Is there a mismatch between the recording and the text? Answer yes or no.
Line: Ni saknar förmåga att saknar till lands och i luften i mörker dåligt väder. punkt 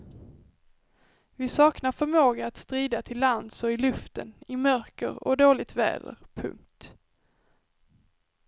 yes